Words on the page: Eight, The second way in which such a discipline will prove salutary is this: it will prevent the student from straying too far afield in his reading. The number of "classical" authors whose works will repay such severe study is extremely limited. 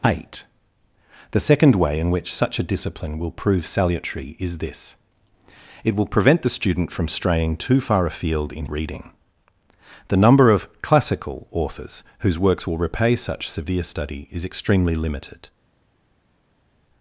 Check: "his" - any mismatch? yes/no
yes